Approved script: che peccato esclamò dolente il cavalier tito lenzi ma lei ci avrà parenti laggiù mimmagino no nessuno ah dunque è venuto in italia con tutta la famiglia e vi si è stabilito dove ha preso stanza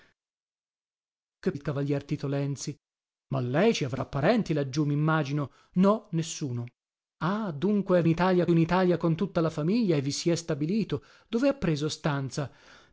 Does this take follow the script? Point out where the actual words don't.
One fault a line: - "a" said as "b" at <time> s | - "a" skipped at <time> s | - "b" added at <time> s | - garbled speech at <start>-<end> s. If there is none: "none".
- "peccato esclamò dolente" skipped at 1.5 s
- "venuto" said as "italia" at 8.1 s